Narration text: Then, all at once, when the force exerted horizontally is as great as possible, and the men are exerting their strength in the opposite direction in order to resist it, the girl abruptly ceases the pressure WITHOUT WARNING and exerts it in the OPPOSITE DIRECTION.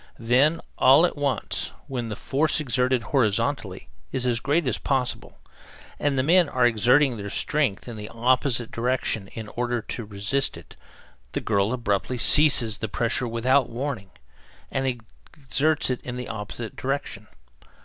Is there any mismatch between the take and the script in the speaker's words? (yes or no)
no